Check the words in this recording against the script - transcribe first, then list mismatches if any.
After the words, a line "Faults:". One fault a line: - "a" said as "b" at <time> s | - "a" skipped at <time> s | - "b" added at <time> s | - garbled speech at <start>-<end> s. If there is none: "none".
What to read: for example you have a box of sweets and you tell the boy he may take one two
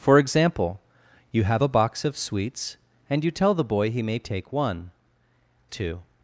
for example you have a box of sweets and you tell the boy he may take one two
Faults:
none